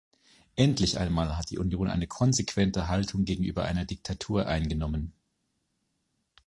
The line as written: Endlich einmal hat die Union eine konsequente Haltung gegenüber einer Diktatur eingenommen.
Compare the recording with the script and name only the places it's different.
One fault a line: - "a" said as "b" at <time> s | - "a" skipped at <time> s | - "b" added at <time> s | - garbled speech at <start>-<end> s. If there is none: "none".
none